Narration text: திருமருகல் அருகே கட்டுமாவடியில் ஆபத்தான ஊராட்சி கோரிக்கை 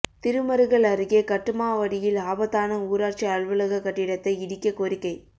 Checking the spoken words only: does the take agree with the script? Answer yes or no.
no